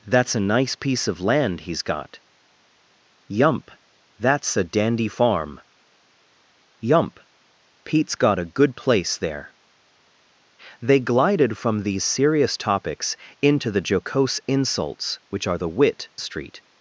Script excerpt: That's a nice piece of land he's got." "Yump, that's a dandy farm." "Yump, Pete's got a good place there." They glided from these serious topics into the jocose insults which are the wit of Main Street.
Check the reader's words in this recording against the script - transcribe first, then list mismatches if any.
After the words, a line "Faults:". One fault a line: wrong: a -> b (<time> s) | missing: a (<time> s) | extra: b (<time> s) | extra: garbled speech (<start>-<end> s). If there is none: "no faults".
That's a nice piece of land he's got." "Yump, that's a dandy farm." "Yump, Pete's got a good place there." They glided from these serious topics into the jocose insults which are the wit Street.
Faults:
missing: of Main (16.1 s)